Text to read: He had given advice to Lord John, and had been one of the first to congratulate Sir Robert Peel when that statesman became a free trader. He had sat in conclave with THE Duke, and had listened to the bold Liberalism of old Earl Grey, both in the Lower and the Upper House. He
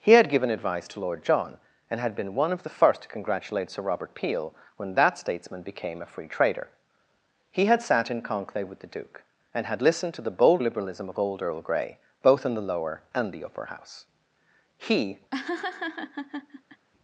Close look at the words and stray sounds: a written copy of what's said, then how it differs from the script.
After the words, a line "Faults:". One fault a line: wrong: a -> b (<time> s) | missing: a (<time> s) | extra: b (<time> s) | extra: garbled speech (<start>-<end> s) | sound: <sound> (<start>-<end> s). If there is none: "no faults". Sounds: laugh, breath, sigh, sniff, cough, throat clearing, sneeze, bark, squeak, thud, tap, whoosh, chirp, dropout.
He had given advice to Lord John, and had been one of the first to congratulate Sir Robert Peel when that statesman became a free trader. He had sat in conclave with THE Duke, and had listened to the bold Liberalism of old Earl Grey, both in the Lower and the Upper House. He
Faults:
sound: laugh (15.3-16.9 s)